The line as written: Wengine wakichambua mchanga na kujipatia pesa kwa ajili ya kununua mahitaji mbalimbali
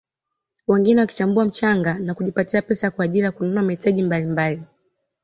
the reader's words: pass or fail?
pass